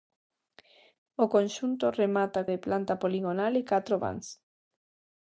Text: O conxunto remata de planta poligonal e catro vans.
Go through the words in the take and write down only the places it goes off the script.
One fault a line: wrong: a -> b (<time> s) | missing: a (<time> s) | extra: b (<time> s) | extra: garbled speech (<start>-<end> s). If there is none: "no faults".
no faults